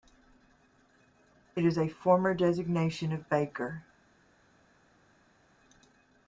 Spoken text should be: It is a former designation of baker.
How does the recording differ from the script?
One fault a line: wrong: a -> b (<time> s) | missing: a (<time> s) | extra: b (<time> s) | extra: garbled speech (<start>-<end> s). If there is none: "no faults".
no faults